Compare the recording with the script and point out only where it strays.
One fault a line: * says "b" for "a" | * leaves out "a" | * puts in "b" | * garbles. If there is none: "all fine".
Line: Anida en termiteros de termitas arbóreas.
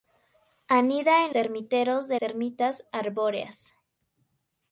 all fine